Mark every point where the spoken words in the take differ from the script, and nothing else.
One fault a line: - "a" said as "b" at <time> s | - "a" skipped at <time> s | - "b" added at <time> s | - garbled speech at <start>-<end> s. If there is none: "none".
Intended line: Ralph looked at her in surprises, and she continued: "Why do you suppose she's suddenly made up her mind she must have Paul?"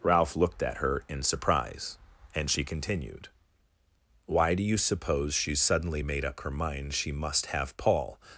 - "surprises" said as "surprise" at 1.2 s